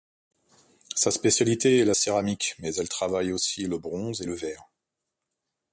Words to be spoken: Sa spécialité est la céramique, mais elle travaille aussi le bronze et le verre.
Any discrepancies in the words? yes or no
no